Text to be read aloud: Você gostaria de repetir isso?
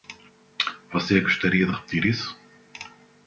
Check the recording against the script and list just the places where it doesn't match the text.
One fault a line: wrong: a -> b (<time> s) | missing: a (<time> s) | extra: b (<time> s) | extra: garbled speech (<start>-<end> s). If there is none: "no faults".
no faults